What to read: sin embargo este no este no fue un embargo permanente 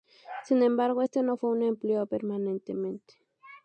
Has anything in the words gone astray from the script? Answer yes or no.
yes